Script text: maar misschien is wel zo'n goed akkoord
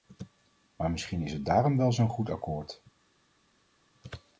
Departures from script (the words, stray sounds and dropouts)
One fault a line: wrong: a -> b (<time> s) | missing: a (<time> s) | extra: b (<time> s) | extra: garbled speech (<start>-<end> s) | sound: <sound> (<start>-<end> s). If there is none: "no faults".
extra: het daarom (1.3 s)